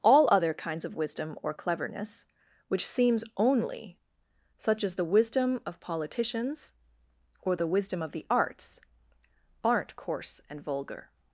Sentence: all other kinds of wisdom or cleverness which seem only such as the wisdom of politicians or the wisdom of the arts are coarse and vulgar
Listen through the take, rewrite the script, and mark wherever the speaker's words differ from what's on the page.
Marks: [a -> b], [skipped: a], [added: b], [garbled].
all other kinds of wisdom or cleverness which [seem -> seems] only such as the wisdom of politicians or the wisdom of the arts [are -> aren't] coarse and vulgar